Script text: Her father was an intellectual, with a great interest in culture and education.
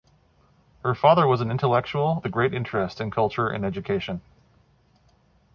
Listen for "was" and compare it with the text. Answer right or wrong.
right